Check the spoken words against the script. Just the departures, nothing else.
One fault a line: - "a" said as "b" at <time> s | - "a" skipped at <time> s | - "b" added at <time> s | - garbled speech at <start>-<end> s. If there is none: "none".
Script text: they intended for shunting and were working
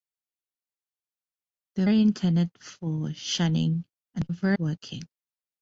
none